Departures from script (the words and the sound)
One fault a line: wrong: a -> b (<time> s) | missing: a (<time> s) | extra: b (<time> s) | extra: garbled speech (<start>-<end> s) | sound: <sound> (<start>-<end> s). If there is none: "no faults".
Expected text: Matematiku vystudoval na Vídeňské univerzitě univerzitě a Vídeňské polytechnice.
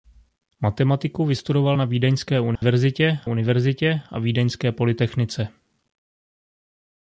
sound: dropout (2.6-2.6 s)